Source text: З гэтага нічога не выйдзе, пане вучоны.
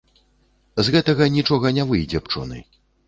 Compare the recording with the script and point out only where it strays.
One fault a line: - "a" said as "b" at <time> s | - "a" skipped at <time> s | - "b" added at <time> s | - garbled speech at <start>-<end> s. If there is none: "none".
- "пане" skipped at 2.3 s